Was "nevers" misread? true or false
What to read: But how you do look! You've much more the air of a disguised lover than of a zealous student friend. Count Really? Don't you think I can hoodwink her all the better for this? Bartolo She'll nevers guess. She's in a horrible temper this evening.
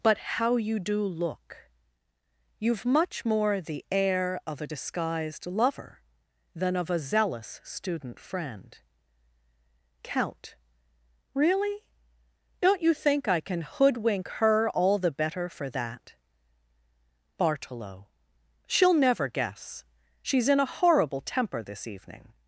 true